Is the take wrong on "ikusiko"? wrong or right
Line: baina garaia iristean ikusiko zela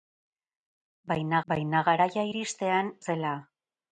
wrong